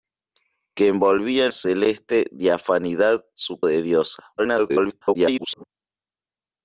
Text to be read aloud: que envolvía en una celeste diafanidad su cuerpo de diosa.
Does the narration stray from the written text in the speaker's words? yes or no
yes